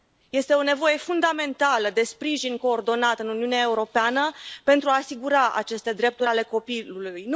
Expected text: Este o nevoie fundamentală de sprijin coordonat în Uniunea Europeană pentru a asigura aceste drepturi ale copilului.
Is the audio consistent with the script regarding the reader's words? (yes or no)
yes